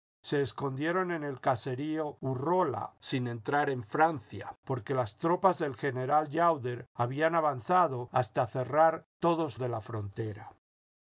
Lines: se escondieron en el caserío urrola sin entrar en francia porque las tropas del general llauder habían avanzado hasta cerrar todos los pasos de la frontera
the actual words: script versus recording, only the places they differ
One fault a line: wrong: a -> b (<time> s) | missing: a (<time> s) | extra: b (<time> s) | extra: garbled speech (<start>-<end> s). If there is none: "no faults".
missing: los pasos (9.6 s)